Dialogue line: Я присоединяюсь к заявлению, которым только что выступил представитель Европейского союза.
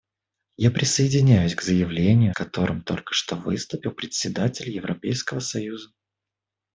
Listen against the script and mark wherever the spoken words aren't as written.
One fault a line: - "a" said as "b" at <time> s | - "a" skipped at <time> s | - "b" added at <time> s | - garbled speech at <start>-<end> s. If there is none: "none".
none